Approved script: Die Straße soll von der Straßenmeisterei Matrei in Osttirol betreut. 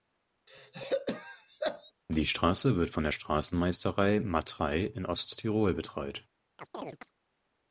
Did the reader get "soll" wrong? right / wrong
wrong